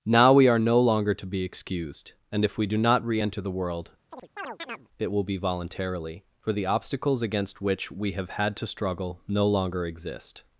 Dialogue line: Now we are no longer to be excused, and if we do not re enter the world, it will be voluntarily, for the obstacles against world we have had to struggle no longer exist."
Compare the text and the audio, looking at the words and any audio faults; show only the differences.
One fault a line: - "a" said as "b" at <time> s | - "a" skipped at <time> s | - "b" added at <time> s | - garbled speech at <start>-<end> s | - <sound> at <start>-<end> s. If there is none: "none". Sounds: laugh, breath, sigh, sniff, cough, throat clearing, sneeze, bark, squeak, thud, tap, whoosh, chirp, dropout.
- chirp at 4.1-4.9 s
- "world" said as "which" at 7.6 s